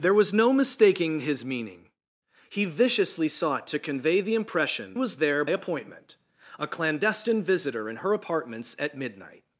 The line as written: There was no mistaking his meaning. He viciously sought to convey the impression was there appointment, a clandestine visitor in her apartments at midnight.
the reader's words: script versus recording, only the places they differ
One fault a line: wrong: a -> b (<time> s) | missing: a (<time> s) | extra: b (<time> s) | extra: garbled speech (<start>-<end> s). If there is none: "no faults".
no faults